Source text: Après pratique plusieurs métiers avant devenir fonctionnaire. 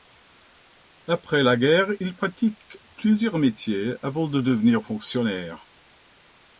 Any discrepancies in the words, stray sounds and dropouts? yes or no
yes